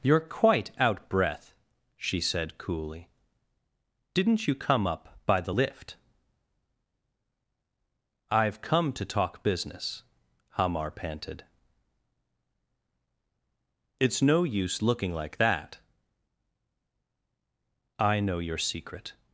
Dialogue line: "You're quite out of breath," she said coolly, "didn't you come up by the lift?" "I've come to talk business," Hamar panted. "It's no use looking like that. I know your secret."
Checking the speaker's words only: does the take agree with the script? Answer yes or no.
no